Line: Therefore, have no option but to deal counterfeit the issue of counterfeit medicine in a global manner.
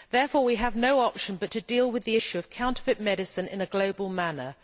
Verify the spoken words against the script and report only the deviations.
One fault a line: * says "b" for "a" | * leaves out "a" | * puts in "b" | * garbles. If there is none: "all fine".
* puts in "we"
* says "with" for "counterfeit"